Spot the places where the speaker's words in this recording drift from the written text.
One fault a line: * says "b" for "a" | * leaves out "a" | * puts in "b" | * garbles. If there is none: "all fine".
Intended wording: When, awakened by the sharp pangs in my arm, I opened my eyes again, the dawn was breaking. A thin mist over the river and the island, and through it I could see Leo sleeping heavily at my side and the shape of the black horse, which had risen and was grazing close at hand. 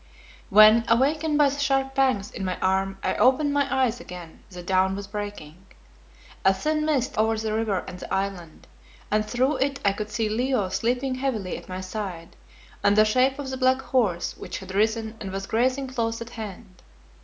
all fine